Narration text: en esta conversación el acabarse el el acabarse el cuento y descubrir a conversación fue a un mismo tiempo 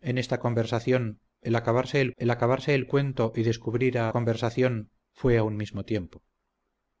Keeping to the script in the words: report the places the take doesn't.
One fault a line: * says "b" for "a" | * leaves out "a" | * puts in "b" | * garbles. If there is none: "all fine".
all fine